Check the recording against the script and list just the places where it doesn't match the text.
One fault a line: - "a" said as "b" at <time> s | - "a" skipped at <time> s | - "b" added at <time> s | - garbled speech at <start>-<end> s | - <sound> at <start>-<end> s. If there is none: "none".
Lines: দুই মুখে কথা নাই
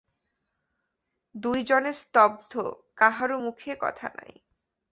- "জনে স্তব্ধ কাহারও" added at 1.6 s